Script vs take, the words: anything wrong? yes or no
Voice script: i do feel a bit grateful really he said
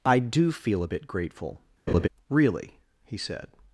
no